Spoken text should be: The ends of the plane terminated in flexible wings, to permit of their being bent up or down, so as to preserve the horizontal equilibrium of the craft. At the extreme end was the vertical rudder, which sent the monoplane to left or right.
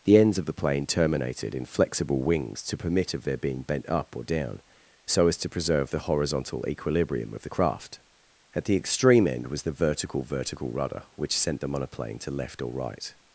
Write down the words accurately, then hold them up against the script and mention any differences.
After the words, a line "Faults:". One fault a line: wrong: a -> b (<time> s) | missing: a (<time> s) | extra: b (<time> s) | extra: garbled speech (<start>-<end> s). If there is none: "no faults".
The ends of the plane terminated in flexible wings, to permit of their being bent up or down, so as to preserve the horizontal equilibrium of the craft. At the extreme end was the vertical vertical rudder, which sent the monoplane to left or right.
Faults:
extra: vertical (10.2 s)